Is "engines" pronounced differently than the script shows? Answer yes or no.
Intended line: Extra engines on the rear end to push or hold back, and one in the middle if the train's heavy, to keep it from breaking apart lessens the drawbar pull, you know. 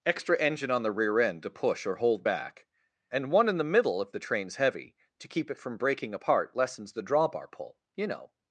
yes